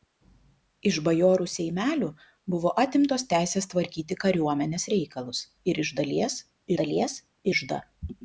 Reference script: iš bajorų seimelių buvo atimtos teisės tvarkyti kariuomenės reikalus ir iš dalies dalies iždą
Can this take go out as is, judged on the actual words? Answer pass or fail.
pass